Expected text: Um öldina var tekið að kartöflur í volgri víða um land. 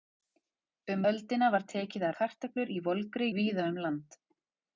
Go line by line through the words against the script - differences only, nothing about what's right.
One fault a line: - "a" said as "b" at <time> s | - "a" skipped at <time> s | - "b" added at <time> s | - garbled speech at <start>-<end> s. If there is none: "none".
none